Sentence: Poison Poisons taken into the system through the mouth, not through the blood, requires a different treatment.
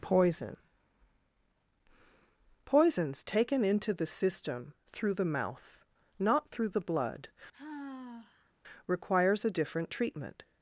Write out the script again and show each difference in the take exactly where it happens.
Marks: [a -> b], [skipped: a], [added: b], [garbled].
Poison Poisons taken into the system through the mouth, not through the blood, requires a different treatment.